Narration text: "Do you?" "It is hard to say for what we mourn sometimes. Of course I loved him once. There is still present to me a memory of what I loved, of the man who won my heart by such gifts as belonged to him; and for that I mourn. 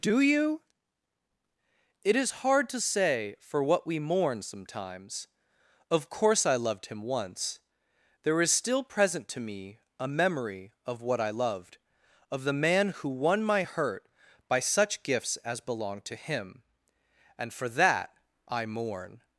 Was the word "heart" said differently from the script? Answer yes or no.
yes